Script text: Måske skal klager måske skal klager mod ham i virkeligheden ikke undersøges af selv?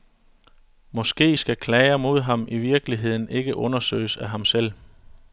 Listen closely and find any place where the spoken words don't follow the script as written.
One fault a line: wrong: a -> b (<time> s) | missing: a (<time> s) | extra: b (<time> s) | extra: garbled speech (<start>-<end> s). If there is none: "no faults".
missing: måske skal klager (2.0 s)
extra: ham (4.3 s)